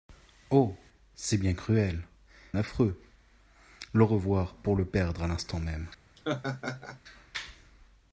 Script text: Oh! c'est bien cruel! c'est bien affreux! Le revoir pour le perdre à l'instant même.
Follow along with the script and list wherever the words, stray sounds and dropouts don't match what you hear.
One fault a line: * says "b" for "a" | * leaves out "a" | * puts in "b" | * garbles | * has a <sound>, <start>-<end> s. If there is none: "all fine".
* leaves out "c'est bien"
* has a laugh, 6.2-7.0 s